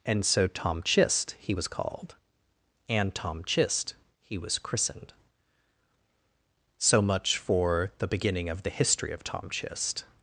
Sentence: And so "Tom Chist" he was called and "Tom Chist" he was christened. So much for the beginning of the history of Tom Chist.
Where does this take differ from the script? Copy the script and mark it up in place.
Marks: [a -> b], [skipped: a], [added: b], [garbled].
And so "Tom Chist" he was called and "Tom Chist" he was christened. So much for the beginning of the history of Tom Chist.